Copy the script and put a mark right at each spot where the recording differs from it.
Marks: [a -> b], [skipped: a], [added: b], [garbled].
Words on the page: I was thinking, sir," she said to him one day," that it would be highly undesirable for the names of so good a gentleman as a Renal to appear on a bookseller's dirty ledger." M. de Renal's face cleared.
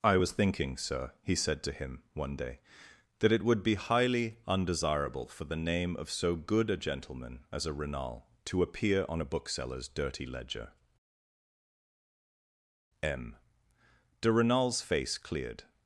I was thinking, sir," [she -> he] said to him one day," that it would be highly undesirable for the [names -> name] of so good a gentleman as a Renal to appear on a bookseller's dirty ledger." M. de Renal's face cleared.